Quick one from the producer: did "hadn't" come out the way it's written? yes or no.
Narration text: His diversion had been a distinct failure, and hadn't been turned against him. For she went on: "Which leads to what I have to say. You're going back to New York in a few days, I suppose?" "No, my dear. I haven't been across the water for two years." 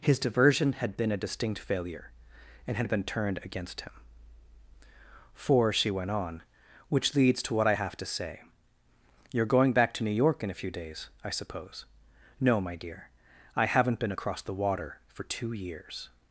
no